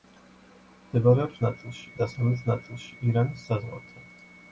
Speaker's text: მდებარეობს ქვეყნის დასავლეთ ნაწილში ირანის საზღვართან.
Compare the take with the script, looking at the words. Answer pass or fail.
fail